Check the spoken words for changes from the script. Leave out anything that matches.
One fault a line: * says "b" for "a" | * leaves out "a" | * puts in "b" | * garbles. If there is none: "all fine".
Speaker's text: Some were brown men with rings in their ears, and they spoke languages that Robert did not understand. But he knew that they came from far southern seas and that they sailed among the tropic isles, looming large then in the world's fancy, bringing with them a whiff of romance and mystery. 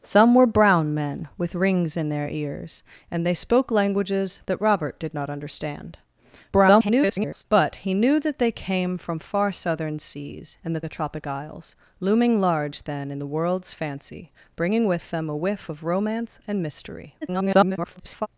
* garbles
* leaves out "they sailed among"
* garbles